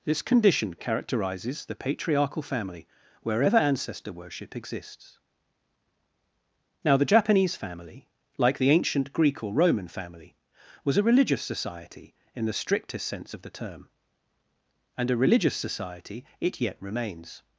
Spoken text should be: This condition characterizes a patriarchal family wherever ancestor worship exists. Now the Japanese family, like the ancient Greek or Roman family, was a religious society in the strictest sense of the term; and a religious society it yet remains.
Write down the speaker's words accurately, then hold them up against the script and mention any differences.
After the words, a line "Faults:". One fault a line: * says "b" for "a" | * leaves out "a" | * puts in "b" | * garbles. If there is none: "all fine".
This condition characterizes the patriarchal family wherever ancestor worship exists. Now the Japanese family, like the ancient Greek or Roman family, was a religious society in the strictest sense of the term; and a religious society it yet remains.
Faults:
* says "the" for "a"